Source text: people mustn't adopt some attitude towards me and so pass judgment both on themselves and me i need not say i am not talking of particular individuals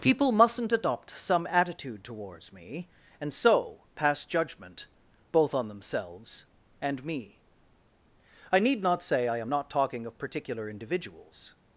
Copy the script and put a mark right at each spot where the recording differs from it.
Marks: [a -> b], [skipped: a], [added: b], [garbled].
people mustn't adopt some attitude towards me and so pass judgment both on themselves and me i need not say i am not talking of particular individuals